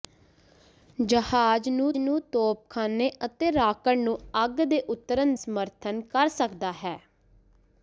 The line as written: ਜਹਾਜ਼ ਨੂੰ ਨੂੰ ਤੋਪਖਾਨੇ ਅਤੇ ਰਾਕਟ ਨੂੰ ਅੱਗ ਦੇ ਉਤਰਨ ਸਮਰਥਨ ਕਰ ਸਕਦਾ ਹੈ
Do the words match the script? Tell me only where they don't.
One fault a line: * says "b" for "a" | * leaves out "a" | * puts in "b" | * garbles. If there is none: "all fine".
all fine